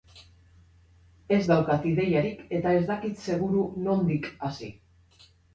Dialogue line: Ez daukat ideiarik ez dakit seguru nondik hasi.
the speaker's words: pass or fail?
fail